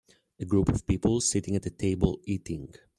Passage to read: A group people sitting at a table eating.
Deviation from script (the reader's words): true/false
true